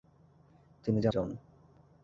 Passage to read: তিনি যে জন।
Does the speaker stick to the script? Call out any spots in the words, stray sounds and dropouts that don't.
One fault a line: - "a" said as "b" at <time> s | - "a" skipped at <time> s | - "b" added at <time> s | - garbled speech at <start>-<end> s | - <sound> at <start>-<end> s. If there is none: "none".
none